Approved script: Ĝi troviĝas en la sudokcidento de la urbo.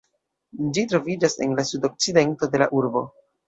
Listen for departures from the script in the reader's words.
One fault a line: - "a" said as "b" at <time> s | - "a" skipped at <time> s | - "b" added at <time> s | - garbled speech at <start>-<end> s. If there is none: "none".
none